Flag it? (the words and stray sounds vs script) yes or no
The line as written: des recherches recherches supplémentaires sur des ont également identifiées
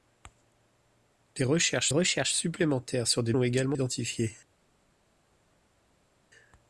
no